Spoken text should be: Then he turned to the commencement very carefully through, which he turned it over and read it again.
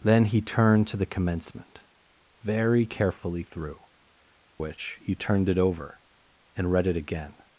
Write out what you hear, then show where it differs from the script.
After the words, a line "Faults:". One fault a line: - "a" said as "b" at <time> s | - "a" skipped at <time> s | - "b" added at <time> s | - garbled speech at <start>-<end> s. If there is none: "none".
Then he turned to the commencement very carefully through, which he turned it over and read it again.
Faults:
none